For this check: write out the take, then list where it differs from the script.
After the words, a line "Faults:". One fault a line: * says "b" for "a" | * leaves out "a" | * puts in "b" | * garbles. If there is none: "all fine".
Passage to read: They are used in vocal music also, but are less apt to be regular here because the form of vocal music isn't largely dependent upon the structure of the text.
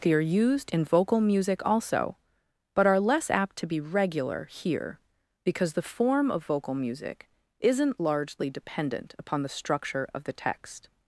They are used in vocal music also, but are less apt to be regular here because the form of vocal music isn't largely dependent upon the structure of the text.
Faults:
all fine